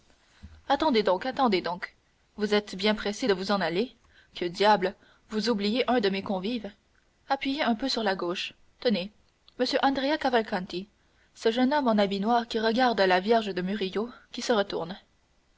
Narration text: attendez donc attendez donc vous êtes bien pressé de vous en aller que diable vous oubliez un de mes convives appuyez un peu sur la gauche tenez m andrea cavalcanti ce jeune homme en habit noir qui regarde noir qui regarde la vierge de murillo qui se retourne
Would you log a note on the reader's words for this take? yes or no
yes